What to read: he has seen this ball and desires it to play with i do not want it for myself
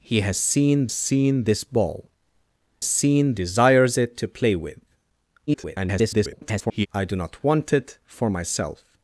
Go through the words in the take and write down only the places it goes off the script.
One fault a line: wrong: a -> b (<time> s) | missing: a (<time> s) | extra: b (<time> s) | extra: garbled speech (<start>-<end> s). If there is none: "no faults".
extra: seen (0.9 s)
wrong: and -> seen (2.8 s)
extra: garbled speech (5.5-6.9 s)